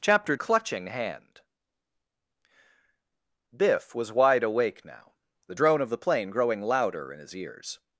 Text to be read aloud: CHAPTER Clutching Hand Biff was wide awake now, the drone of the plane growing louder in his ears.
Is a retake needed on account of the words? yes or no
no